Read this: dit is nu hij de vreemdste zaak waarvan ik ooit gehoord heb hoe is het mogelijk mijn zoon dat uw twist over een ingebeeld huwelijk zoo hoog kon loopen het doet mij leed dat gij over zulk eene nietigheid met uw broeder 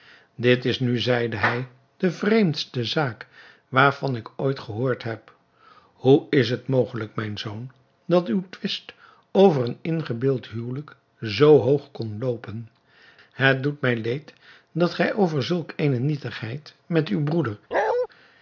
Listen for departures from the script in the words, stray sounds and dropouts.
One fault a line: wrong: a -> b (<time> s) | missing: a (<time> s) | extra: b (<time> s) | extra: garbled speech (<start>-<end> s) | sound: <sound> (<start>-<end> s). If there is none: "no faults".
extra: zeide (1.0 s)
sound: bark (17.7-18.1 s)